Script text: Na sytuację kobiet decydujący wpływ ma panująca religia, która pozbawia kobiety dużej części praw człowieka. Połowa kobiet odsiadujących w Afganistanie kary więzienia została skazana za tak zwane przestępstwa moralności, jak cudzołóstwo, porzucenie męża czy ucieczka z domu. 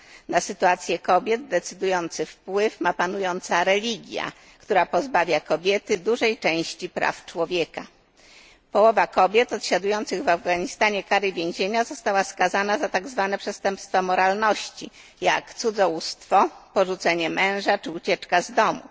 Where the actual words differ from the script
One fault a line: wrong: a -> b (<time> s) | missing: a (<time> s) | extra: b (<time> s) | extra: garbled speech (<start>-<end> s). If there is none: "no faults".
no faults